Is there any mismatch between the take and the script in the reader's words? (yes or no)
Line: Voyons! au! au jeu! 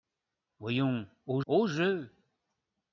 no